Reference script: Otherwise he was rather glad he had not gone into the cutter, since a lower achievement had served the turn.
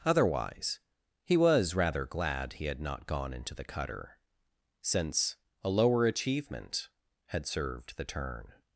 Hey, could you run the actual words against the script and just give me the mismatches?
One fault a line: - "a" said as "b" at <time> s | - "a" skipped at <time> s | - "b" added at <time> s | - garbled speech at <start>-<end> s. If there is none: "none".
none